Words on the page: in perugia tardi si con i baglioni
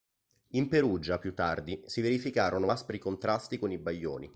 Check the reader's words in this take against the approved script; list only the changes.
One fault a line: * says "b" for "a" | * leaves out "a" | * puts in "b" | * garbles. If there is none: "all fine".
* puts in "più"
* puts in "verificarono aspri contrasti"